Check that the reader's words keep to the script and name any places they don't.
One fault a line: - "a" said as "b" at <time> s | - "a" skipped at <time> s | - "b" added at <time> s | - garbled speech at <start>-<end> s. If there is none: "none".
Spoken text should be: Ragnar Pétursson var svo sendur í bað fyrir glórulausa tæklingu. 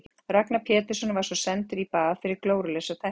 none